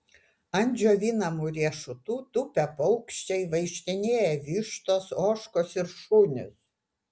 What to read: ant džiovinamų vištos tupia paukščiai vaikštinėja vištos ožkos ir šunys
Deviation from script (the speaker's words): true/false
true